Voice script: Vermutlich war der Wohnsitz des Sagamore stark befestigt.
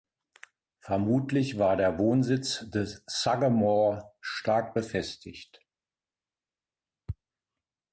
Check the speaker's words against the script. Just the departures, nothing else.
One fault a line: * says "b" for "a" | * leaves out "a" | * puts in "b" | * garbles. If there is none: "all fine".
all fine